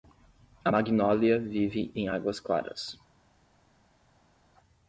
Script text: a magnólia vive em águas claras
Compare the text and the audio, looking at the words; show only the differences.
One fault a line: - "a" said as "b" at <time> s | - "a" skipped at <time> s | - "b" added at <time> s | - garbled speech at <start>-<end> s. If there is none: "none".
none